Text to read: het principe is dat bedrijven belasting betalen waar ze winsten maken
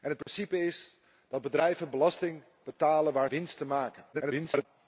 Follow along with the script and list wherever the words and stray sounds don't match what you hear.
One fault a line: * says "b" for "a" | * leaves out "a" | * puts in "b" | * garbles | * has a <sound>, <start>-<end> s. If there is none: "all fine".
* has a dropout, 0.2-0.3 s
* leaves out "ze"
* garbles